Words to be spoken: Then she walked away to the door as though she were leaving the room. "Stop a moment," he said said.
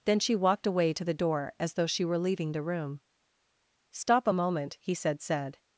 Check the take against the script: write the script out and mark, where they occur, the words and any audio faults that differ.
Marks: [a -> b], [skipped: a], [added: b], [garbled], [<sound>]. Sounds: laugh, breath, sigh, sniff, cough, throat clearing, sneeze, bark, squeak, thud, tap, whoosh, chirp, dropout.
Then she walked away to the door as though she were leaving the room. "Stop a moment," he said said.